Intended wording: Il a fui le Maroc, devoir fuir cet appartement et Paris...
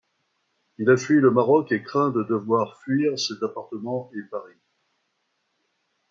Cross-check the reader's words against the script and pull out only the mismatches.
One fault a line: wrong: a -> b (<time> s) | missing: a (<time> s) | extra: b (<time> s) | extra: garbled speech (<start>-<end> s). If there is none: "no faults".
extra: et craint de (1.7 s)